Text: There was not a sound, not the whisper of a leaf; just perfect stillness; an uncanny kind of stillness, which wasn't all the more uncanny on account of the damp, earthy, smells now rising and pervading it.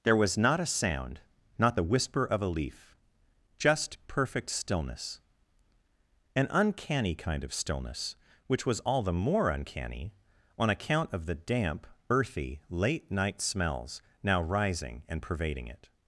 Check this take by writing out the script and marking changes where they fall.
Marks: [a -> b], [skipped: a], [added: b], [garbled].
There was not a sound, not the whisper of a leaf; just perfect stillness; an uncanny kind of stillness, which [wasn't -> was] all the more uncanny on account of the damp, earthy, [added: late night] smells now rising and pervading it.